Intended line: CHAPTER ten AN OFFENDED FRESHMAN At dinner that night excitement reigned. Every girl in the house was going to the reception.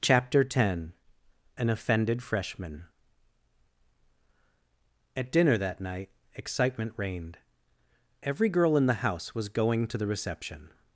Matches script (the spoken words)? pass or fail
pass